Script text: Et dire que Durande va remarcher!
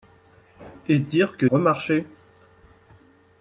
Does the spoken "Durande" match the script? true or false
false